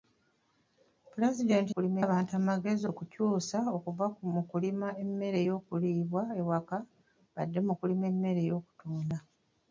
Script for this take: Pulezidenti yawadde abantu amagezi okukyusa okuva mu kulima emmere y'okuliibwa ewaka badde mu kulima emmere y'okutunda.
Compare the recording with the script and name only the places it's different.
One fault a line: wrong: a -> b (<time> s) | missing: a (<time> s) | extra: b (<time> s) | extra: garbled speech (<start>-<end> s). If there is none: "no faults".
wrong: yawadde -> kulima (1.7 s)